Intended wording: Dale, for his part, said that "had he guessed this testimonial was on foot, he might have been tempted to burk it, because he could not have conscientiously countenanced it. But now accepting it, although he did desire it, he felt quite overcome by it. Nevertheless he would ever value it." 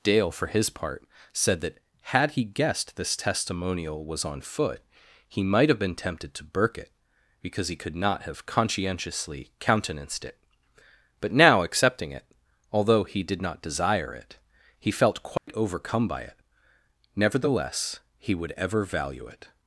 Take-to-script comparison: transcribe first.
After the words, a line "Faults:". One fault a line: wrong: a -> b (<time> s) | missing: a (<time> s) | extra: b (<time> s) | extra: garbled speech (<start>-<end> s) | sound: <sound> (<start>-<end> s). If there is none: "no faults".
Dale, for his part, said that "had he guessed this testimonial was on foot, he might have been tempted to burk it, because he could not have conscientiously countenanced it. But now accepting it, although he did not desire it, he felt quite overcome by it. Nevertheless he would ever value it."
Faults:
extra: not (13.4 s)
sound: dropout (15.4-15.5 s)